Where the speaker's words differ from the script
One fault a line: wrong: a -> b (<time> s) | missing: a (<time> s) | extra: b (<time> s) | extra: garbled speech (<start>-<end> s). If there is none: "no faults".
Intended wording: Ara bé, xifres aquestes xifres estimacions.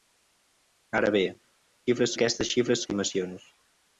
no faults